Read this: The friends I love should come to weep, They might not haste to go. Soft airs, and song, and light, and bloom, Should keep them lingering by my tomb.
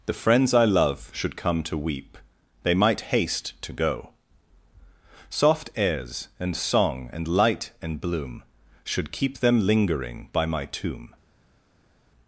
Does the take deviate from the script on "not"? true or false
true